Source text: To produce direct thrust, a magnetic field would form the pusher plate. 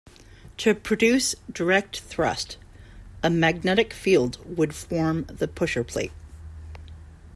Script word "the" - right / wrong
right